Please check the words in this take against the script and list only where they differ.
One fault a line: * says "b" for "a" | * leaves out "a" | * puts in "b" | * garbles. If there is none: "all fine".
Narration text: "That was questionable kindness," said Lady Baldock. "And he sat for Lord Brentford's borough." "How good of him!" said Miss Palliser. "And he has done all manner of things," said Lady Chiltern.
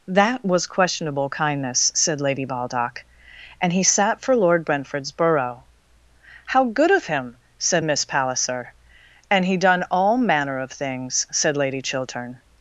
* leaves out "has"